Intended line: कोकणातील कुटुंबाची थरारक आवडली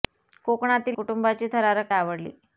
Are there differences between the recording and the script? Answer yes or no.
no